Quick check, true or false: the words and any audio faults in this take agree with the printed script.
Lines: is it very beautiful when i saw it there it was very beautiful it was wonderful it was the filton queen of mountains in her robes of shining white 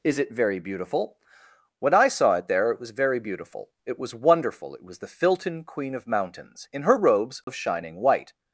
false